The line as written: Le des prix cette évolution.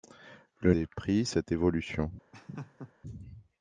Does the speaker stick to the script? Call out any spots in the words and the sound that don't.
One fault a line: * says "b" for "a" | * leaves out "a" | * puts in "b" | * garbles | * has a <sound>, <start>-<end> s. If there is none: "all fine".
* has a laugh, 2.3-2.9 s